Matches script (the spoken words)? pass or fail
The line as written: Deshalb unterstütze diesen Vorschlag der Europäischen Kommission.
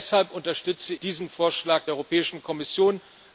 pass